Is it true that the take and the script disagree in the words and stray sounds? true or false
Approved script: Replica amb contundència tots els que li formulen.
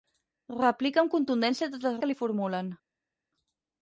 false